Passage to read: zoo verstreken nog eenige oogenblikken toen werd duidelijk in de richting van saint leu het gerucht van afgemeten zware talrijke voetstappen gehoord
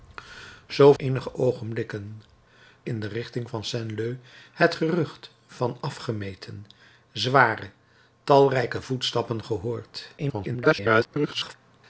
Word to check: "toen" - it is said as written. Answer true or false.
false